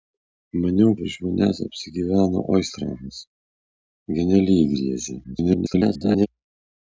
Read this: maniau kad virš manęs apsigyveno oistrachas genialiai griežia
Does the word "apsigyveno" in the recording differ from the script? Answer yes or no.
no